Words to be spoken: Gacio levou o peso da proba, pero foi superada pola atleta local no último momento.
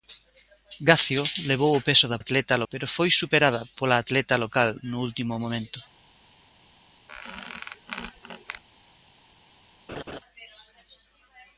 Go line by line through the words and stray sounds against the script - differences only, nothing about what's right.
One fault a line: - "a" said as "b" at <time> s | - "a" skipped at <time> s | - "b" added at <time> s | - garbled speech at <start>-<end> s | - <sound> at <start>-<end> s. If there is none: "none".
- "proba" said as "atleta" at 2.2 s
- squeak at 7.1-8.6 s
- laugh at 9.9-10.2 s